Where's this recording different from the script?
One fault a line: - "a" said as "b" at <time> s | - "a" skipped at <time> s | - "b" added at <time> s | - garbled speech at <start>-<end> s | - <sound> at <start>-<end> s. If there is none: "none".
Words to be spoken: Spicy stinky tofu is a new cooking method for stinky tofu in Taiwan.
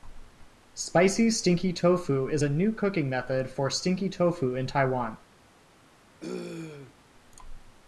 - throat clearing at 6.2-6.9 s